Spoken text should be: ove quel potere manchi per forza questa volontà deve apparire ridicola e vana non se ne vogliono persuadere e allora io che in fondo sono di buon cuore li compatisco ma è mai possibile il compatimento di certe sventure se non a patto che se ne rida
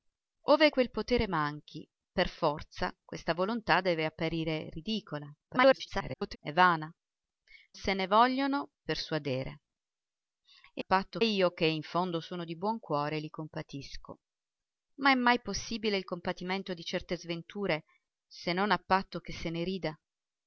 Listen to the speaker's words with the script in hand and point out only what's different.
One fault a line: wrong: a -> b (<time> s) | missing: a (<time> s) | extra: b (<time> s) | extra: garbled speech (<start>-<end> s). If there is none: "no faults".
extra: garbled speech (5.5-6.4 s)
missing: non (6.9 s)
wrong: allora -> patto (10.8 s)